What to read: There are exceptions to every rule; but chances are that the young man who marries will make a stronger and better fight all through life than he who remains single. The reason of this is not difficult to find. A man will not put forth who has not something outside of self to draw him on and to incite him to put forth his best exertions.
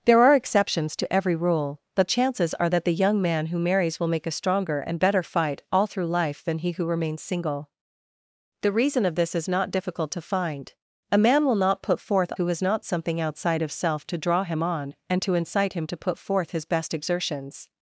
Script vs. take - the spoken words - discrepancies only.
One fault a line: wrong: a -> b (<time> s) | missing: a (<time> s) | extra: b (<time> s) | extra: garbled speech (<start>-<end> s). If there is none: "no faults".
no faults